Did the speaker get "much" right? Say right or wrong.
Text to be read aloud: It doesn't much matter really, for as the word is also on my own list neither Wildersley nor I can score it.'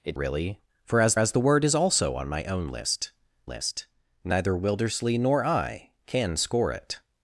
wrong